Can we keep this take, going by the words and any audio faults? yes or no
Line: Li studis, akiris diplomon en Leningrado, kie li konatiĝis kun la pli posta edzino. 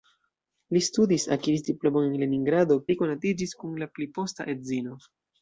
no